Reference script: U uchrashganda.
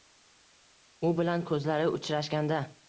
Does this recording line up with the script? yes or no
no